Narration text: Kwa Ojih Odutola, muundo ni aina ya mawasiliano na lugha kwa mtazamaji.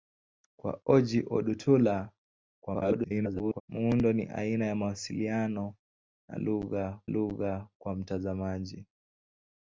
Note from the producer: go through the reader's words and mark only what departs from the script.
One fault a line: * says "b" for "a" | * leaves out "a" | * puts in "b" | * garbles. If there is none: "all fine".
* garbles
* puts in "lugha"